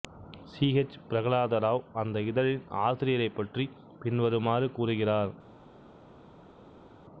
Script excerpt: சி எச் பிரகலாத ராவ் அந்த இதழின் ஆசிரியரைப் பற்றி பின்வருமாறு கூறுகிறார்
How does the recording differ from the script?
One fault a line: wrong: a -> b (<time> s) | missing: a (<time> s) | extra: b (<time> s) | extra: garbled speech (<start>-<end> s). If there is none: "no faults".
no faults